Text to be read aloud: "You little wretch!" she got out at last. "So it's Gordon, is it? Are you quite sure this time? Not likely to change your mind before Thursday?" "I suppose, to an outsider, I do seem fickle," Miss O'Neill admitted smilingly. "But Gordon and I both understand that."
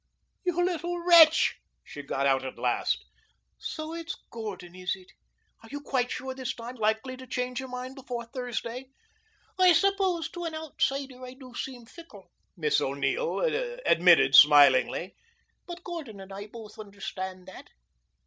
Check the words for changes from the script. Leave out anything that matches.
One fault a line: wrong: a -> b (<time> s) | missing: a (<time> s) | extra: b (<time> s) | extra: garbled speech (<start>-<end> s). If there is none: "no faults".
missing: Not (6.8 s)